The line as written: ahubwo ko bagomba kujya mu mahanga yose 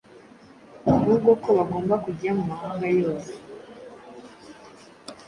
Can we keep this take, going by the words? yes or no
yes